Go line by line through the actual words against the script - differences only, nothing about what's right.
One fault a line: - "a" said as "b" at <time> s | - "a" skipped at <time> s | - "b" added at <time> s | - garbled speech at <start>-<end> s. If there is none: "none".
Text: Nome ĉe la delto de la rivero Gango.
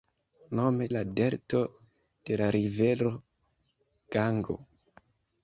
- "ĉe" skipped at 0.9 s